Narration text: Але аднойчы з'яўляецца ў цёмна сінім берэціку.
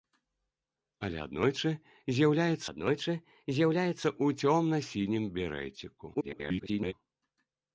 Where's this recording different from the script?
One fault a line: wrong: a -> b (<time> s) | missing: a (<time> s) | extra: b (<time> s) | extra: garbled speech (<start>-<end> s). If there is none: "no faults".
extra: аднойчы з'яўляецца (2.7 s)
extra: garbled speech (6.1-6.9 s)